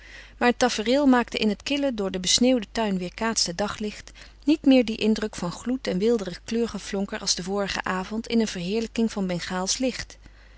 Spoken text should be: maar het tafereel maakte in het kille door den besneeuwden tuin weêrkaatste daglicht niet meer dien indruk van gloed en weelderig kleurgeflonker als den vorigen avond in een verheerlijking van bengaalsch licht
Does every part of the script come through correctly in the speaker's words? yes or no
yes